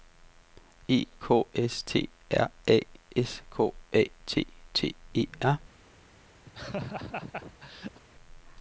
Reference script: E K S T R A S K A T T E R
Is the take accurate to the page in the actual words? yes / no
yes